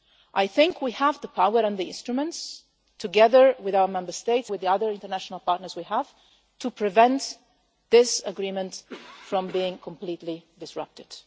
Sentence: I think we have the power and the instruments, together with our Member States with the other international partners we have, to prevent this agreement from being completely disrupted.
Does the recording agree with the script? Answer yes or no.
yes